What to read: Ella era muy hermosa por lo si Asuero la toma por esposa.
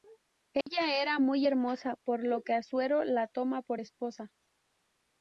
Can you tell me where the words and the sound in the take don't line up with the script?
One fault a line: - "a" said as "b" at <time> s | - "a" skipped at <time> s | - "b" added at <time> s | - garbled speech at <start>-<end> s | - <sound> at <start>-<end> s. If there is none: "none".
- dropout at 0.6-0.7 s
- "si" said as "que" at 2.4 s